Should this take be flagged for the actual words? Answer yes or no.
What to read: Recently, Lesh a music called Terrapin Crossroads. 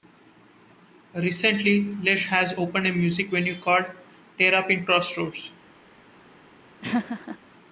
yes